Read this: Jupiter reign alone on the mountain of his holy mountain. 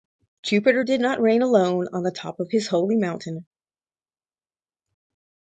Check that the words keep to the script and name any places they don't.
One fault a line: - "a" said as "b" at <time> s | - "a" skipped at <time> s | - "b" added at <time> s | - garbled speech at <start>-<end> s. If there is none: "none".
- "did not" added at 0.8 s
- "mountain" said as "top" at 2.1 s